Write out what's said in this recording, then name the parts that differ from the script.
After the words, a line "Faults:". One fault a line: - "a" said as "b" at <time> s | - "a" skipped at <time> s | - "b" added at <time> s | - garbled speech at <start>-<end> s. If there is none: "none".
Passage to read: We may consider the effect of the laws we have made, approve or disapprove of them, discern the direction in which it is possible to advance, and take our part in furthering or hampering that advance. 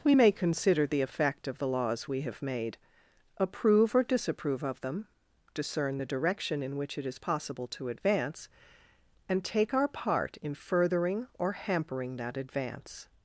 We may consider the effect of the laws we have made, approve or disapprove of them, discern the direction in which it is possible to advance, and take our part in furthering or hampering that advance.
Faults:
none